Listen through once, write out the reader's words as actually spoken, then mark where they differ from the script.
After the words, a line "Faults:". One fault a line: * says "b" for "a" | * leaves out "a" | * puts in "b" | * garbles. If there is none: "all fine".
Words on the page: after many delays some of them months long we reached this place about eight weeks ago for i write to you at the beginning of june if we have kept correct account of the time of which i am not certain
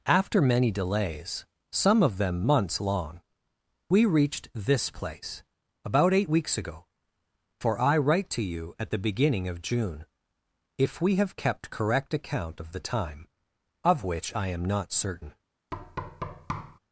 after many delays some of them months long we reached this place about eight weeks ago for i write to you at the beginning of june if we have kept correct account of the time of which i am not certain
Faults:
all fine